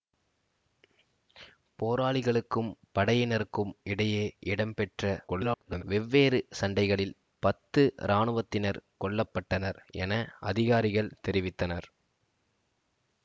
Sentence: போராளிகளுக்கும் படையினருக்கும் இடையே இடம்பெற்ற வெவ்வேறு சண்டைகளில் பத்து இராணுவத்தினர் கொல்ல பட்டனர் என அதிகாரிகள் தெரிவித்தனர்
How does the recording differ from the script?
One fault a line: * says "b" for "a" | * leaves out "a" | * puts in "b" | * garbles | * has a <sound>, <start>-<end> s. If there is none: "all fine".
* garbles